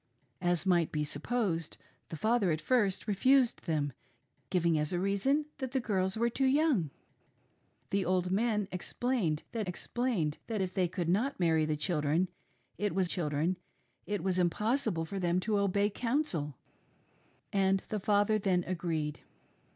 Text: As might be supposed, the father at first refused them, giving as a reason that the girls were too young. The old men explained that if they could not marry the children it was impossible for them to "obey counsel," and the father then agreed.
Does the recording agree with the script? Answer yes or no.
no